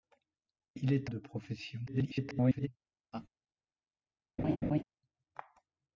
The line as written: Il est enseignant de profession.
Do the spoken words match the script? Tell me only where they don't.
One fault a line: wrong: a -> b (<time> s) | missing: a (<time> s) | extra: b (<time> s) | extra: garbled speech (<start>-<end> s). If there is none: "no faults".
missing: enseignant (1.1 s)
extra: garbled speech (1.9-2.7 s)